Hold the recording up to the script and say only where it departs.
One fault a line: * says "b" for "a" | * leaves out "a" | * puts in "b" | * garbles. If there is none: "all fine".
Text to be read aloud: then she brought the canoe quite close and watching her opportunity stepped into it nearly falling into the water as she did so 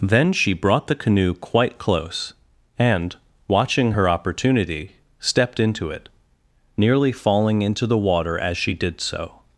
all fine